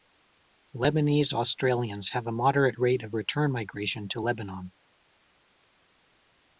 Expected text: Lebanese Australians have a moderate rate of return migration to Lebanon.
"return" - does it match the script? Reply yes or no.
yes